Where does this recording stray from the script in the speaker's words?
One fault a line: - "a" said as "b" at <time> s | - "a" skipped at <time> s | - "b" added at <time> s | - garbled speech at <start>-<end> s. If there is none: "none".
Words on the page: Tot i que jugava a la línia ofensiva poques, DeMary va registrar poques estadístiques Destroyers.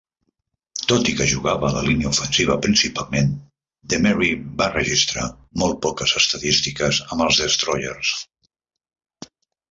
- "poques" said as "principalment" at 2.6 s
- "molt" added at 5.6 s
- "amb els" added at 7.1 s